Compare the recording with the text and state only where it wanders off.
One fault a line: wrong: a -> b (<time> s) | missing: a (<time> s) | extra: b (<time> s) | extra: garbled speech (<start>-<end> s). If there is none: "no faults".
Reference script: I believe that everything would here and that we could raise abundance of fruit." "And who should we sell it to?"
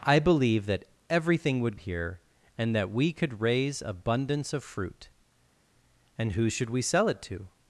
no faults